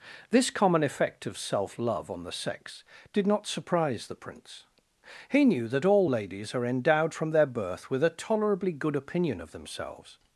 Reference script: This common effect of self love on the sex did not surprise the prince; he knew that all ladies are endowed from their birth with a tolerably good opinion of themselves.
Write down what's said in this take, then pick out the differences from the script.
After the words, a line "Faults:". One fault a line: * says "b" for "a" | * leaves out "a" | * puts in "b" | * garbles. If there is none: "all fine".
This common effect of self love on the sex did not surprise the prince; he knew that all ladies are endowed from their birth with a tolerably good opinion of themselves.
Faults:
all fine